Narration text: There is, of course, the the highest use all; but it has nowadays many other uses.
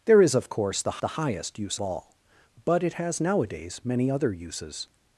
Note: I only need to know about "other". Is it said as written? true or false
true